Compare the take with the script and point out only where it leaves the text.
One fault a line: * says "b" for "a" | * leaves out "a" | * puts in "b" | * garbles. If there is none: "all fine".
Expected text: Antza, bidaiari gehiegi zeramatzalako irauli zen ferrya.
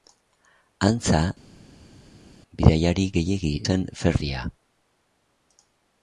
* leaves out "zeramatzalako irauli"